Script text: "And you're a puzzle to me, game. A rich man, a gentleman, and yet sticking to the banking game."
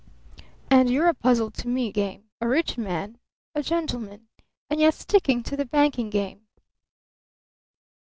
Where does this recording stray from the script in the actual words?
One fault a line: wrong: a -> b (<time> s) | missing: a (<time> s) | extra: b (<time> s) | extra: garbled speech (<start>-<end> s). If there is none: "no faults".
no faults